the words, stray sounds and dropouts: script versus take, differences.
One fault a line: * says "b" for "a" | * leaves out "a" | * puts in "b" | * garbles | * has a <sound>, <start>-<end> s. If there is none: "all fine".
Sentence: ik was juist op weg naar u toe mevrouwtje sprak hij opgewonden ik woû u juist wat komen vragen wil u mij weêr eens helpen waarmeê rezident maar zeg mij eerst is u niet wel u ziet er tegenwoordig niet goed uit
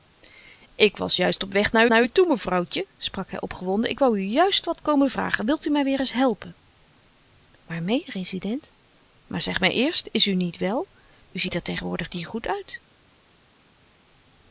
* puts in "naar"